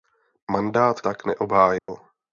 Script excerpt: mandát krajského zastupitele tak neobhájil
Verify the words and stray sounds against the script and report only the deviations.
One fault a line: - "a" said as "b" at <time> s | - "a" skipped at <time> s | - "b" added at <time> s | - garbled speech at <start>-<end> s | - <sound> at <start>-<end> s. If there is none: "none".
- "krajského zastupitele" skipped at 1.0 s
- dropout at 1.8-1.9 s